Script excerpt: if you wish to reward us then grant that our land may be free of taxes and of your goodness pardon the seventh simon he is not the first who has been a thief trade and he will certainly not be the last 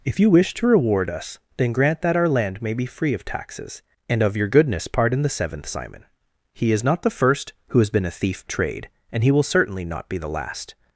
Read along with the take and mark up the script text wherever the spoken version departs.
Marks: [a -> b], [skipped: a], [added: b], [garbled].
if you wish to reward us then grant that our land may be free of taxes and of your goodness pardon the seventh simon he is not the first who has been a thief trade and he will certainly not be the last